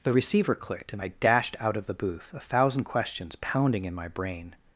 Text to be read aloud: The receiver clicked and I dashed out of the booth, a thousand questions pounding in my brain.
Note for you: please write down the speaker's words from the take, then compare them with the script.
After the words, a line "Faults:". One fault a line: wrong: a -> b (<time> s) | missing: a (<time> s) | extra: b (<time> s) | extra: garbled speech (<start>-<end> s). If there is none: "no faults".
The receiver clicked and I dashed out of the booth, a thousand questions pounding in my brain.
Faults:
no faults